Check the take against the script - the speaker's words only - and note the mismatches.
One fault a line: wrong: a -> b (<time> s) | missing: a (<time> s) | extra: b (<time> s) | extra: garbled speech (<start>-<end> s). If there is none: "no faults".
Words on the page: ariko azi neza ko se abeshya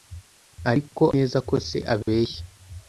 missing: azi (1.0 s)